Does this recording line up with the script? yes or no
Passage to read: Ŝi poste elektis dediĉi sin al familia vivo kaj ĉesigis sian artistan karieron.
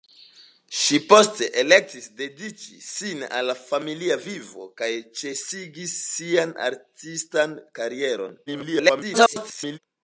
no